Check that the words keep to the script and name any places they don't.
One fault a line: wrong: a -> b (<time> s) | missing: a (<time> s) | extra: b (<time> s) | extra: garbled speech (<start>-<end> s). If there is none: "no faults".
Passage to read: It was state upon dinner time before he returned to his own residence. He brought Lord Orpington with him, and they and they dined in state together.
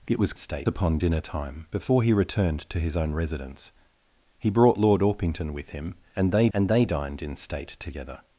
no faults